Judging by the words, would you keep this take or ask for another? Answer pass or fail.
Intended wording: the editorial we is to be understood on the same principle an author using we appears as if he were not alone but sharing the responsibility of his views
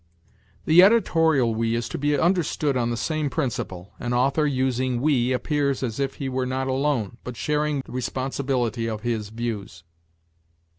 pass